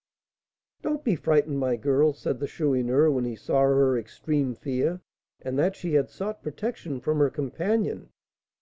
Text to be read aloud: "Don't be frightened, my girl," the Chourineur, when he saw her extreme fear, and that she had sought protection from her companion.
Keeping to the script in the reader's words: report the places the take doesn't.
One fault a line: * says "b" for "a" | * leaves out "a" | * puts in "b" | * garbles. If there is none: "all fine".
* puts in "said"